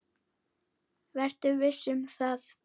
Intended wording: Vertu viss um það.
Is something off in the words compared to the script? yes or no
no